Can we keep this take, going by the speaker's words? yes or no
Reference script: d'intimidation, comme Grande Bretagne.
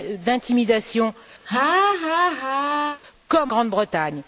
yes